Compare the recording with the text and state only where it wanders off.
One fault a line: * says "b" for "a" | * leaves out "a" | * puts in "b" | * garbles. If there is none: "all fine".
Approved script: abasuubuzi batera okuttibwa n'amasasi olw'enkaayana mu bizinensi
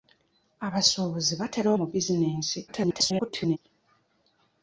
* leaves out "okuttibwa n'amasasi olw'enkaayana"
* garbles